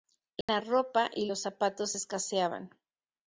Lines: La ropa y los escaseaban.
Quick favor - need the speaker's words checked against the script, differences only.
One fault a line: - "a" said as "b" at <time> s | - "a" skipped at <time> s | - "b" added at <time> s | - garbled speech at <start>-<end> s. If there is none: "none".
- "zapatos" added at 1.4 s